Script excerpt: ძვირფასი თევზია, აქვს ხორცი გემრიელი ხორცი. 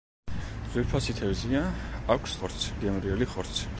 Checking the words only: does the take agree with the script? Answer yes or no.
yes